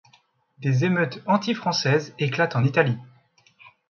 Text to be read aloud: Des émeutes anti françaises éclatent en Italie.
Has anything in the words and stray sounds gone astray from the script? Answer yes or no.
no